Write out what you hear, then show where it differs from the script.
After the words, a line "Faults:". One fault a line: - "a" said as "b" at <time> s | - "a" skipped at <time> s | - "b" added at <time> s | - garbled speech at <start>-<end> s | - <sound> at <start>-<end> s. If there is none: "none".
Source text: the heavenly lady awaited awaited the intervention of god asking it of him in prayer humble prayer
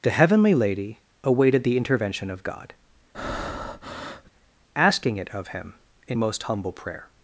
the heavenly lady awaited the intervention of god asking it of him in most humble prayer
Faults:
- "awaited" skipped at 1.6 s
- breath at 3.1-4.3 s
- "prayer" said as "most" at 6.1 s